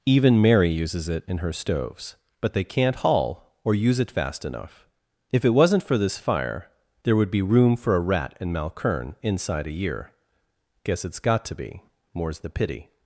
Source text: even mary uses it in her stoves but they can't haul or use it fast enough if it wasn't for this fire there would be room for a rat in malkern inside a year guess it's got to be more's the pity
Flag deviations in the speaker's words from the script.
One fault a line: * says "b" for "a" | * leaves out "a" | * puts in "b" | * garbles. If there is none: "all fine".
all fine